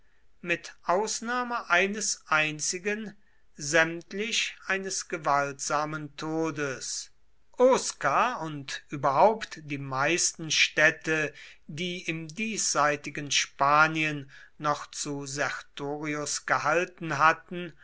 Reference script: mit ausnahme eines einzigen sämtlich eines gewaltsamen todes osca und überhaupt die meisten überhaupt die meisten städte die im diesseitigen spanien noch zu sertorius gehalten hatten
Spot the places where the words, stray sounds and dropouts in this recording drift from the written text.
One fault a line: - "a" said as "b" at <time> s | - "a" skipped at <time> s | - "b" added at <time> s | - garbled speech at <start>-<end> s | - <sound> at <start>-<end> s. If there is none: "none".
- "überhaupt die meisten" skipped at 10.5 s